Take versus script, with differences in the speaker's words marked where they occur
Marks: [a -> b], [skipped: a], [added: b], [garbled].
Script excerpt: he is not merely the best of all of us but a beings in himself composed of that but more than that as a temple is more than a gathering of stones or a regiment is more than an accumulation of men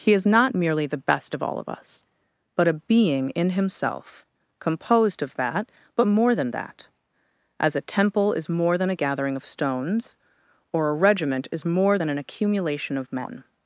he is not merely the best of all of us but a [beings -> being] in himself composed of that but more than that as a temple is more than a gathering of stones or a regiment is more than an accumulation of men